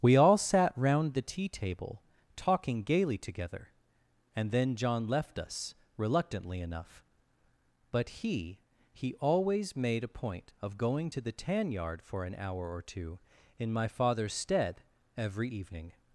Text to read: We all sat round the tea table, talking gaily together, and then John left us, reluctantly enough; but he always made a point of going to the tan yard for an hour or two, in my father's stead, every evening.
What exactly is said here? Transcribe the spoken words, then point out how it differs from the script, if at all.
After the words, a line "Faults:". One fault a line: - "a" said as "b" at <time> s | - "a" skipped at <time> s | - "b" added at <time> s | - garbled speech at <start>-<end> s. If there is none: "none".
We all sat round the tea table, talking gaily together, and then John left us, reluctantly enough; but he he always made a point of going to the tan yard for an hour or two, in my father's stead, every evening.
Faults:
- "he" added at 8.9 s